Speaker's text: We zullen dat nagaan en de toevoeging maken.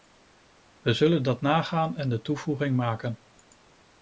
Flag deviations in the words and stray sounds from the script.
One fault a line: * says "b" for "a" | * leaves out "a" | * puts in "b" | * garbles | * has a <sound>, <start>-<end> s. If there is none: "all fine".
all fine